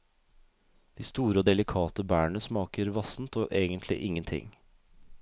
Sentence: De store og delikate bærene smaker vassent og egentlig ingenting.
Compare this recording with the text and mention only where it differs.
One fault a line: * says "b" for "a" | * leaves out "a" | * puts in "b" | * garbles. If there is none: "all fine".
all fine